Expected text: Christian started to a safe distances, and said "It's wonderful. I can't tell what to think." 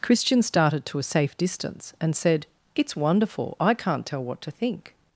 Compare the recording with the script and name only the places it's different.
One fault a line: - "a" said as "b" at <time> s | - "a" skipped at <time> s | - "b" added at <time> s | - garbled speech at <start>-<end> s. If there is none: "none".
- "distances" said as "distance" at 1.4 s